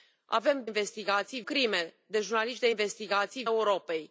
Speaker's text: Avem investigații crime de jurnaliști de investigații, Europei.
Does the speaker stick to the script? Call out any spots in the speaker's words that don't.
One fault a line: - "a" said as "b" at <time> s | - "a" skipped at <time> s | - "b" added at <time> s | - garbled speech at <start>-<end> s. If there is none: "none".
none